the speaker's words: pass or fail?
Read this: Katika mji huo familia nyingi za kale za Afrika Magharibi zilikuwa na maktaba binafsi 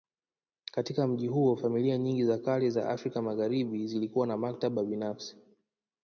pass